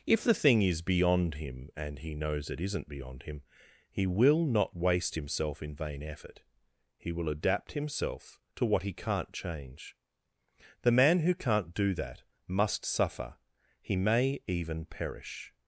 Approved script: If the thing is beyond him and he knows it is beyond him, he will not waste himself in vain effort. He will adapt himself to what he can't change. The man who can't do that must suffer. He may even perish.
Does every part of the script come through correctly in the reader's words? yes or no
no